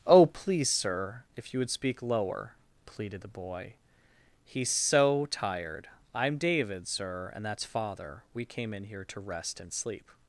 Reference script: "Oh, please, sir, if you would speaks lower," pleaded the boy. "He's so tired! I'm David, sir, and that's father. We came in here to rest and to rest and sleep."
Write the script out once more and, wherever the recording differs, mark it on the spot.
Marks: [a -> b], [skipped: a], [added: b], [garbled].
"Oh, please, sir, if you would [speaks -> speak] lower," pleaded the boy. "He's so tired! I'm David, sir, and that's father. We came in here to rest and [skipped: to rest and] sleep."